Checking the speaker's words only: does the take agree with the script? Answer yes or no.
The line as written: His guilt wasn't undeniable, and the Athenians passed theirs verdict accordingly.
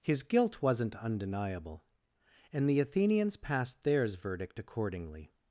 yes